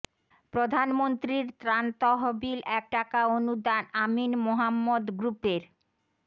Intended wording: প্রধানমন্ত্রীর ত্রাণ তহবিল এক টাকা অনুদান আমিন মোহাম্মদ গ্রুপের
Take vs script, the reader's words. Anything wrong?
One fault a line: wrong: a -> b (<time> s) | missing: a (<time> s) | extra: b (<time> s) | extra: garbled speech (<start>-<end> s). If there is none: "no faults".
no faults